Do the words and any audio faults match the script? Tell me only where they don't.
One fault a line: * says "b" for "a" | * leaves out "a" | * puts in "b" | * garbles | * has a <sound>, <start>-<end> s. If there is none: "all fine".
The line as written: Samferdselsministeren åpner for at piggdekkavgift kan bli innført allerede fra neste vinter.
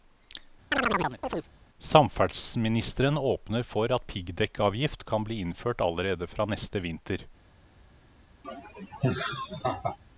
* has a chirp, 0.7-1.5 s
* has a laugh, 8.4-10.0 s